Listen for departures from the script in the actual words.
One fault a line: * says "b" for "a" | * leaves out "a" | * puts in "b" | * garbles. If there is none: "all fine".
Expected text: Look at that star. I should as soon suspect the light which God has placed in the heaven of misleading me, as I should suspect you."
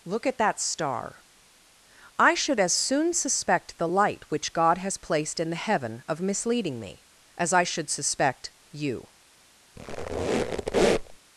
all fine